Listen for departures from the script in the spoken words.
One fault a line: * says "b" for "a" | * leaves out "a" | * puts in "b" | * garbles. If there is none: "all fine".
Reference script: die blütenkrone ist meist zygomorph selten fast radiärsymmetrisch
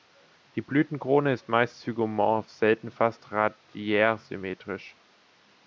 all fine